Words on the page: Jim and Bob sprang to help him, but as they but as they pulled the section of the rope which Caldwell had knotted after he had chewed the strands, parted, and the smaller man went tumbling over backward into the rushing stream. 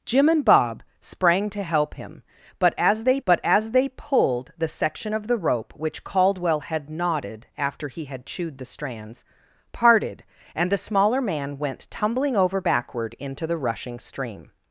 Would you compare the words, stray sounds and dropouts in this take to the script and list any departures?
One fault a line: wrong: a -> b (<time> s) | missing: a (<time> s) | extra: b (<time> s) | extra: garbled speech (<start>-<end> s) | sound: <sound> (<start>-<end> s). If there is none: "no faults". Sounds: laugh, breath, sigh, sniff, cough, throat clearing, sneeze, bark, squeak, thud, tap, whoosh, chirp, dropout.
no faults